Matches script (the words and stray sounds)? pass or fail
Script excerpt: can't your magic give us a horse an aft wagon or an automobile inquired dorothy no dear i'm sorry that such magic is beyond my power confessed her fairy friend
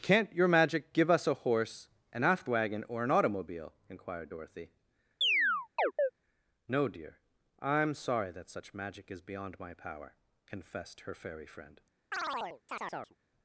fail